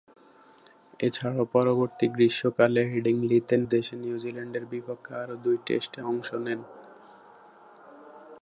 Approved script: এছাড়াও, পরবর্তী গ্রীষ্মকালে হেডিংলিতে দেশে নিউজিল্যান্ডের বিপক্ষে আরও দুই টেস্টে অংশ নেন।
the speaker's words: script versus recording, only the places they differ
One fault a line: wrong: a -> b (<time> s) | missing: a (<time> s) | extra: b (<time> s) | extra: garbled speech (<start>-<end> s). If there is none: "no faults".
no faults